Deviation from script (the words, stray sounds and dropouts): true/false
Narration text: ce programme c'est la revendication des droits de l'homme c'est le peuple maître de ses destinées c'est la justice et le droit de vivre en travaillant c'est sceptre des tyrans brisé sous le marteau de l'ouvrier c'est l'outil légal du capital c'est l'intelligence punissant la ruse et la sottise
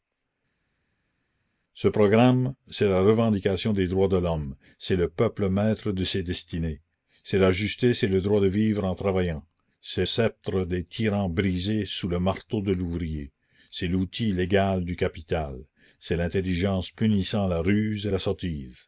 false